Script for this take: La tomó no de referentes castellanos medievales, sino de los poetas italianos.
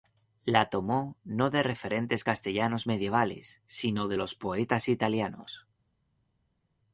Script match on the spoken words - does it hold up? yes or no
yes